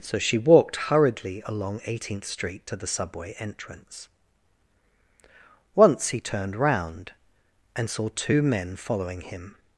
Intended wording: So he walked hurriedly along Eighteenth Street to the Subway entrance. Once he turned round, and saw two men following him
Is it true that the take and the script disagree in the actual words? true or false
true